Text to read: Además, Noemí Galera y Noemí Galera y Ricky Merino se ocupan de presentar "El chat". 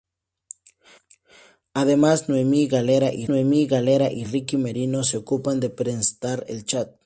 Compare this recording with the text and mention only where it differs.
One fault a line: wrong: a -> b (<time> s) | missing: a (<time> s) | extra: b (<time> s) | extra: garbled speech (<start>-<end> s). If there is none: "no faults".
no faults